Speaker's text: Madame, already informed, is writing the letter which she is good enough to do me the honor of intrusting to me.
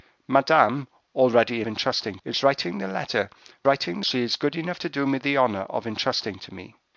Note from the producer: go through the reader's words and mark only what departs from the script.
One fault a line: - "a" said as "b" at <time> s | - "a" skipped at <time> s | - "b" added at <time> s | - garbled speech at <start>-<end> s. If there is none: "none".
- "informed" said as "intrusting" at 1.7 s
- "which" said as "writing" at 3.7 s